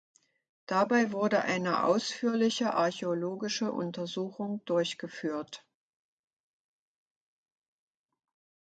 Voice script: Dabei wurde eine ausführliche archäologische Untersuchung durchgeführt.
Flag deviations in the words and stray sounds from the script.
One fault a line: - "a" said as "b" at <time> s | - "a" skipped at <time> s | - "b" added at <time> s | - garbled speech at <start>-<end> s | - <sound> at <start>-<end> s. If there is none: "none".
none